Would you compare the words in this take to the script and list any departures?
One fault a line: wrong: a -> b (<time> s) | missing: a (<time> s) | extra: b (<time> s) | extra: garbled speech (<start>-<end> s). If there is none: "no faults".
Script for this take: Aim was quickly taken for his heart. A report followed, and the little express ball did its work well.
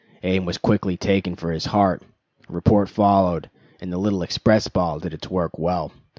no faults